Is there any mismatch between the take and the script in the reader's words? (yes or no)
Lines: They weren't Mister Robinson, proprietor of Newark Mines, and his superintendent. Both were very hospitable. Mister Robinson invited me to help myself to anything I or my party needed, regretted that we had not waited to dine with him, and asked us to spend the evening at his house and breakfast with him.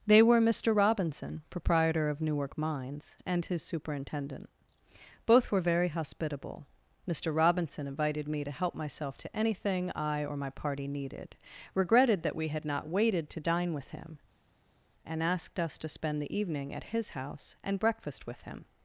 yes